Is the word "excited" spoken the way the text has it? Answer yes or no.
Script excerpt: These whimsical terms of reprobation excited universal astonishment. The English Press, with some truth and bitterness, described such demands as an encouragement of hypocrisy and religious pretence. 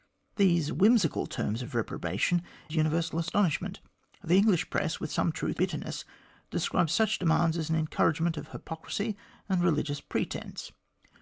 no